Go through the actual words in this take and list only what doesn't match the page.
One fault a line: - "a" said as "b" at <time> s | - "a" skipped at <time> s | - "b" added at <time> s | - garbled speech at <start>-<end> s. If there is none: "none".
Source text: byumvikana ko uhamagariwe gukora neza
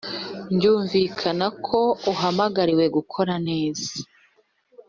none